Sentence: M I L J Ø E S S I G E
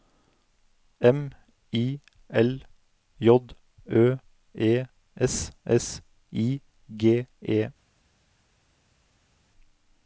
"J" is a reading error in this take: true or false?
false